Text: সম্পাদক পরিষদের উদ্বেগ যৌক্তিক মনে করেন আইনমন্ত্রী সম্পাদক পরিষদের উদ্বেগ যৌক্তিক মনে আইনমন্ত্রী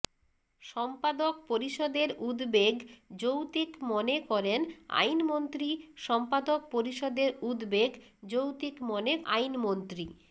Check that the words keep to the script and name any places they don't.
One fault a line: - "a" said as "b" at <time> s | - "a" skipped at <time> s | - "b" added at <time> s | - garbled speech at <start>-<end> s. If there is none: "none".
none